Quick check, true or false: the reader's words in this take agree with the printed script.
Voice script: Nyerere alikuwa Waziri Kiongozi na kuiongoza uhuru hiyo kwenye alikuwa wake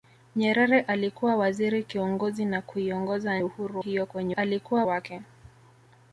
true